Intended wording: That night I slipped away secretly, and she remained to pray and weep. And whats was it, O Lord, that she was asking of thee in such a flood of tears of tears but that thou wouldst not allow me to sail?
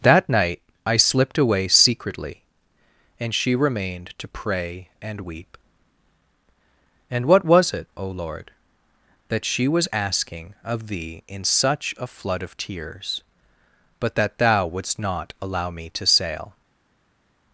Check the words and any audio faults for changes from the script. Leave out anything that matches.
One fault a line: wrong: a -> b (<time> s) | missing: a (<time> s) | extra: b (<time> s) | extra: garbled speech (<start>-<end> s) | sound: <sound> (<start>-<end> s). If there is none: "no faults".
wrong: whats -> what (7.3 s)
missing: of tears (13.2 s)